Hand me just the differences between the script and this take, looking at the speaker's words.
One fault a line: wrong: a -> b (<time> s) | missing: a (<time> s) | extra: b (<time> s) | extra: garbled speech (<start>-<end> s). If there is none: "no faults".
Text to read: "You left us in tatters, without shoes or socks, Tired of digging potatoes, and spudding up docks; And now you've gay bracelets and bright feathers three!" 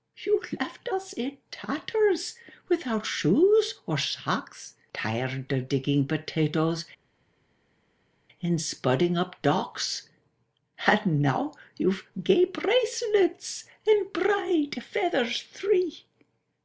no faults